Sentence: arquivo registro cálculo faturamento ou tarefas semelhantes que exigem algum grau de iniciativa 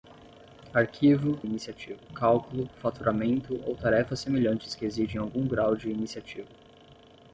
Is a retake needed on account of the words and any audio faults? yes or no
yes